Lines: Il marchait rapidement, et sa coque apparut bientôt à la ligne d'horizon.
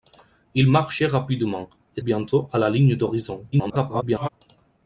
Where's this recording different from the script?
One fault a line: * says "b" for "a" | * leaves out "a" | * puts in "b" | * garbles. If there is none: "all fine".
* leaves out "sa coque apparut"
* garbles